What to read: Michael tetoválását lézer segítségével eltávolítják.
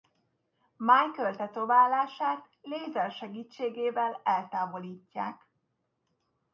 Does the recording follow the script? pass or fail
pass